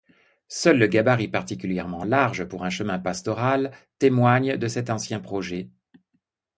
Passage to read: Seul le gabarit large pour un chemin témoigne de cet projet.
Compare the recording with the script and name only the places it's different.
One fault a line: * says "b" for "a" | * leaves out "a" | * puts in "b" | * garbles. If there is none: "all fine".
* puts in "particulièrement"
* puts in "pastoral"
* puts in "ancien"